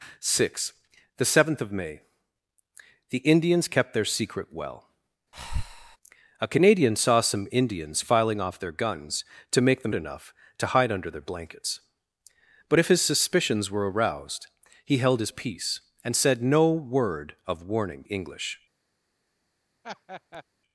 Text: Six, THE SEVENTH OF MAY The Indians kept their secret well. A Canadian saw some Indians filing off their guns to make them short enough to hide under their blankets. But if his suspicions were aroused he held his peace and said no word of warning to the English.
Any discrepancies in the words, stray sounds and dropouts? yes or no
yes